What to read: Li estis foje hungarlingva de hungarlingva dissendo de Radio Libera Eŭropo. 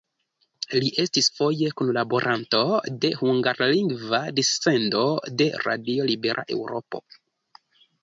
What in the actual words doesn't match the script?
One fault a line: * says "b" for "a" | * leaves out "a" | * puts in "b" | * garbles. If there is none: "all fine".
* says "kunlaboranto" for "hungarlingva"